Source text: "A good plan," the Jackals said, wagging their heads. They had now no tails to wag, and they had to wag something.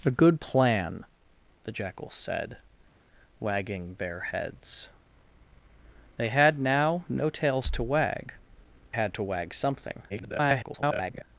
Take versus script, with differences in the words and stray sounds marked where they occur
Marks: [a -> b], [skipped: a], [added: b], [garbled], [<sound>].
"A good plan," the Jackals said, wagging their heads. They had now no tails to wag, [skipped: and they] had to wag something. [garbled]